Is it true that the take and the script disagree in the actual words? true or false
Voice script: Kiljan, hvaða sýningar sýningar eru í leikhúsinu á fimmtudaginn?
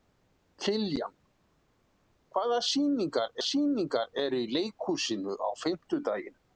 false